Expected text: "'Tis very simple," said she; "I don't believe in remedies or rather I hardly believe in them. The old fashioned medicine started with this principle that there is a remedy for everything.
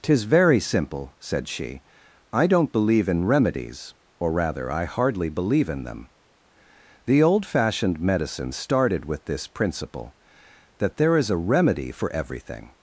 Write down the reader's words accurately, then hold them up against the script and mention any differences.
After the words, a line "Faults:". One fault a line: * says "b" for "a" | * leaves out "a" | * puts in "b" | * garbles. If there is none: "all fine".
"'Tis very simple," said she; "I don't believe in remedies or rather I hardly believe in them. The old fashioned medicine started with this principle that there is a remedy for everything.
Faults:
all fine